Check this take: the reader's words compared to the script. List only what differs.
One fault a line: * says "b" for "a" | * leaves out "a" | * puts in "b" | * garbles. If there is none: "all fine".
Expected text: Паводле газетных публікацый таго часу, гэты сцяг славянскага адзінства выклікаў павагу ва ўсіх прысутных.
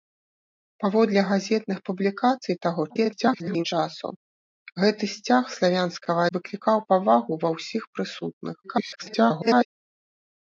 * garbles
* leaves out "адзінства"
* garbles